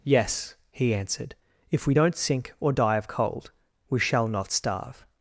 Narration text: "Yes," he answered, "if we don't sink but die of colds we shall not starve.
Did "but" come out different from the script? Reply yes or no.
yes